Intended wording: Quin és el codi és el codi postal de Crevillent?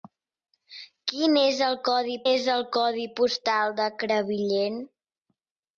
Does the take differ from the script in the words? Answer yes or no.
no